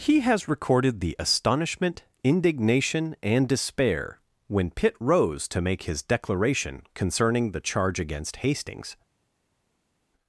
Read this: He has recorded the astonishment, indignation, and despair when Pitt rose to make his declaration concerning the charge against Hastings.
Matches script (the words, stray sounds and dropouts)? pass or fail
pass